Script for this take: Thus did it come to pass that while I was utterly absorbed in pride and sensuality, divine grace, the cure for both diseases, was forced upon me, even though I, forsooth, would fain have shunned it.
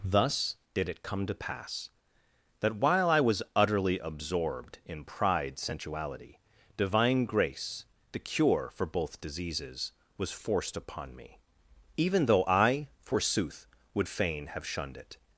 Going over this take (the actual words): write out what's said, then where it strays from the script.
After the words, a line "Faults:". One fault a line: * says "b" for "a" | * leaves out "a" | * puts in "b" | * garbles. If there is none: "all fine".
Thus did it come to pass that while I was utterly absorbed in pride sensuality, divine grace, the cure for both diseases, was forced upon me, even though I, forsooth, would fain have shunned it.
Faults:
* leaves out "and"